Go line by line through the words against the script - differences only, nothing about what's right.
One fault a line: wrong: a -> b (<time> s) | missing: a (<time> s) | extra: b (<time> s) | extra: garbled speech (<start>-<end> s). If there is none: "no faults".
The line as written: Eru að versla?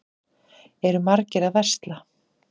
extra: margir (1.1 s)